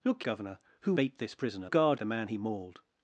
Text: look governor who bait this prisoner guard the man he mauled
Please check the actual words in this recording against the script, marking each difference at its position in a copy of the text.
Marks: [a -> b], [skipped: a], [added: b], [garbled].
look governor who bait this prisoner guard the man he mauled